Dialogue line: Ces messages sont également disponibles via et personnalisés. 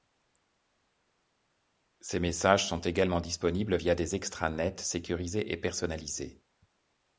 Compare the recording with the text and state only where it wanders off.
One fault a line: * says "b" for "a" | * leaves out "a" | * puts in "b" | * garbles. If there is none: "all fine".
* puts in "des extranets sécurisés"